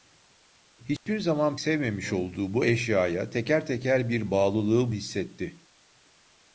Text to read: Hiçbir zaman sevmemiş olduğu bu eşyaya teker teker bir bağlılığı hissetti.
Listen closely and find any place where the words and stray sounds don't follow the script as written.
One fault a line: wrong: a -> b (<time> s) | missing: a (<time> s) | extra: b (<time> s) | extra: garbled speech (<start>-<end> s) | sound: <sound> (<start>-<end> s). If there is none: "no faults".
sound: dropout (1.0-1.1 s)